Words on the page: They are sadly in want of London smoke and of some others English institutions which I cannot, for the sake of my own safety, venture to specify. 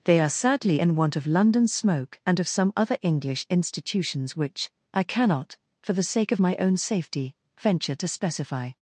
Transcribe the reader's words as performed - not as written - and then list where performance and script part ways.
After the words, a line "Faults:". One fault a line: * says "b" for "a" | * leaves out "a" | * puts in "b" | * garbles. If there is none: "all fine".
They are sadly in want of London smoke and of some other English institutions which I cannot, for the sake of my own safety, venture to specify.
Faults:
* says "other" for "others"